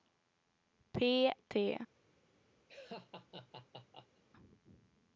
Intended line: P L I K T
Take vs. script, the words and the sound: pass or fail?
fail